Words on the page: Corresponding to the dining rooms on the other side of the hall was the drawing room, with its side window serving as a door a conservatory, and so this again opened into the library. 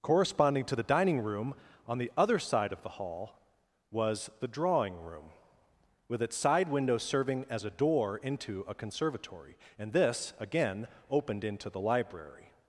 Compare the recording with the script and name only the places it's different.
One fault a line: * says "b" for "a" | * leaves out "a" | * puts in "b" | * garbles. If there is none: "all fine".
* says "room" for "rooms"
* puts in "into"
* leaves out "so"